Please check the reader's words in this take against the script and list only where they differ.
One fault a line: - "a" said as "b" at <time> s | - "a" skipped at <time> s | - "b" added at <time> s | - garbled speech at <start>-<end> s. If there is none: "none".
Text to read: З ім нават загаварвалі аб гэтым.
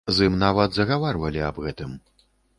none